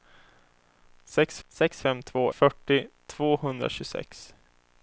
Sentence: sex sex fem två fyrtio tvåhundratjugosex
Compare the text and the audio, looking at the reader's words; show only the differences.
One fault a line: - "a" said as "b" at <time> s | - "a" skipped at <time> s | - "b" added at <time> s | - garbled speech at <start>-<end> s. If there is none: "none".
none